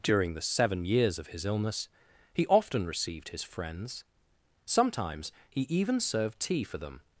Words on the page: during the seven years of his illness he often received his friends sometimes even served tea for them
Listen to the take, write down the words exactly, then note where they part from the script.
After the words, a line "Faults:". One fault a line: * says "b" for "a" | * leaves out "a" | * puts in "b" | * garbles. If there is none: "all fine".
during the seven years of his illness he often received his friends sometimes he even served tea for them
Faults:
* puts in "he"